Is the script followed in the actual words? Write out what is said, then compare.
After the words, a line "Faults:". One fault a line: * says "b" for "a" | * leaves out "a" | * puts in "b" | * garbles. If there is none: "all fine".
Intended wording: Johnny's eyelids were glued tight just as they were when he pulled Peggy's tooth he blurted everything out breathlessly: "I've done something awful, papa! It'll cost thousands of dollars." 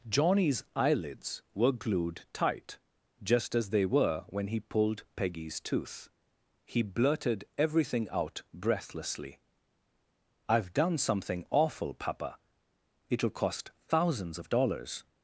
Johnny's eyelids were glued tight just as they were when he pulled Peggy's tooth he blurted everything out breathlessly: "I've done something awful, papa! It'll cost thousands of dollars."
Faults:
all fine